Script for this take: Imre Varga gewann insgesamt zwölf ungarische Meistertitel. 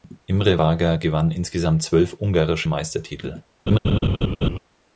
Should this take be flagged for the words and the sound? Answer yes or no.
yes